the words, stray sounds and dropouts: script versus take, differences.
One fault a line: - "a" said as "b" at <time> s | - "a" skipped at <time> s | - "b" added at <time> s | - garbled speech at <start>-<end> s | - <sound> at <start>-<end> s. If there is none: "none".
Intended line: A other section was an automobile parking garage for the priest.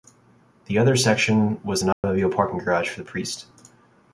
- "A" said as "The" at 0.7 s
- dropout at 1.9-2.0 s